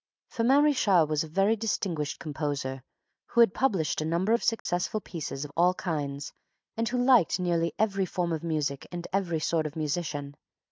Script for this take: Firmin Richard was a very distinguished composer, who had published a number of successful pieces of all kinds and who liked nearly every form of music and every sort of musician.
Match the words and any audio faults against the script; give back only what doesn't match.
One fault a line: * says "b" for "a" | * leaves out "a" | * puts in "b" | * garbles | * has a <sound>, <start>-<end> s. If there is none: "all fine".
* has a dropout, 4.6-4.7 s